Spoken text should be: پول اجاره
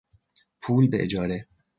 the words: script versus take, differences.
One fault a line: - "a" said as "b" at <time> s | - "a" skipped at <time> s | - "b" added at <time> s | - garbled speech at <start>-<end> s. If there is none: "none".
none